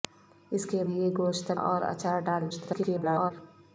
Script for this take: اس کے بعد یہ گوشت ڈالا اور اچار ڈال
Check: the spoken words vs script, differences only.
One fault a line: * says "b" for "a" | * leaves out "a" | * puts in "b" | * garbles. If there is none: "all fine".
* leaves out "بعد"
* leaves out "ڈالا"
* garbles